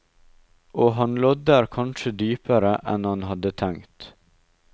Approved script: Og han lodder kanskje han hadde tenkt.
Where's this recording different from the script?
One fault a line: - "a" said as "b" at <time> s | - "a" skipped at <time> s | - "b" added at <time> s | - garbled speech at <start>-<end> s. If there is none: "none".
- "dypere enn" added at 2.2 s